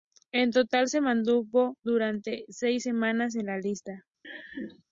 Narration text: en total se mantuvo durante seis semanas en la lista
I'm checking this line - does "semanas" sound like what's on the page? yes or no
yes